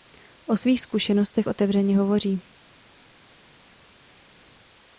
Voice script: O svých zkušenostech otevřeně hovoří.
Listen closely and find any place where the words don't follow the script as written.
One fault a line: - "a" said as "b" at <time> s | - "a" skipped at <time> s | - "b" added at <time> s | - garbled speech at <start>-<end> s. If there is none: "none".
none